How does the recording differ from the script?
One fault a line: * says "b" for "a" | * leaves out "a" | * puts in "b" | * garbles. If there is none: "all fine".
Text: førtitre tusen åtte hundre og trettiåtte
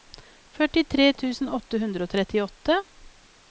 all fine